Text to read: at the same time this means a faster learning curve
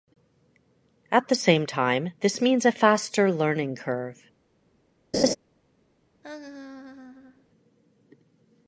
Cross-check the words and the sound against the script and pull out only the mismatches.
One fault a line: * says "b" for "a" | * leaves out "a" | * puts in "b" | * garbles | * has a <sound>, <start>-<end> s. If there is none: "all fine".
* has a laugh, 5.1-5.4 s
* has a laugh, 6.2-7.5 s